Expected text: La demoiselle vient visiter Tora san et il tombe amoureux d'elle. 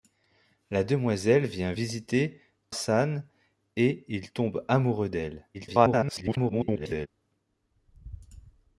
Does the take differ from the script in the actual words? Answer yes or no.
yes